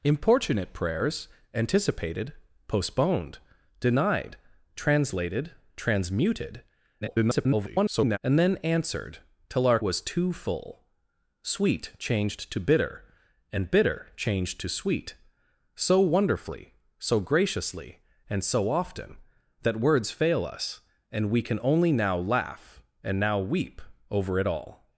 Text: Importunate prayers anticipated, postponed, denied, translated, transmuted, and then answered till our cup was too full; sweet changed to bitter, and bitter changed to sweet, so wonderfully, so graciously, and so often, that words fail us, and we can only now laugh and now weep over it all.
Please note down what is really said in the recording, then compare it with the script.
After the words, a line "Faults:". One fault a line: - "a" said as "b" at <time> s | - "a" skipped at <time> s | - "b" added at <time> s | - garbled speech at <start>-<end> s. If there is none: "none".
Importunate prayers anticipated, postponed, denied, translated, transmuted, [garbled] and then answered till our was too full; sweet changed to bitter, and bitter changed to sweet, so wonderfully, so graciously, and so often, that words fail us, and we can only now laugh and now weep over it all.
Faults:
- garbled speech at 7.0-8.2 s
- "cup" skipped at 9.8 s